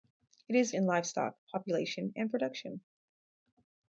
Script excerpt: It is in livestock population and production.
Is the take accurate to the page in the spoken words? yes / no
yes